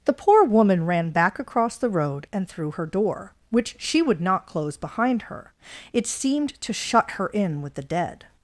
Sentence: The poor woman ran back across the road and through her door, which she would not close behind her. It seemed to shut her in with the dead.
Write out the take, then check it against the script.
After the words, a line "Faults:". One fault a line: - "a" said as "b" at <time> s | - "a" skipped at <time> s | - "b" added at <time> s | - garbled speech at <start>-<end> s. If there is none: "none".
The poor woman ran back across the road and through her door, which she would not close behind her. It seemed to shut her in with the dead.
Faults:
none